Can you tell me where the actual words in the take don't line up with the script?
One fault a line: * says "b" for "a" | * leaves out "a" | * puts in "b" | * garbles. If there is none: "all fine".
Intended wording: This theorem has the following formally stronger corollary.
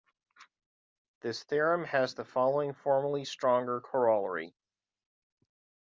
all fine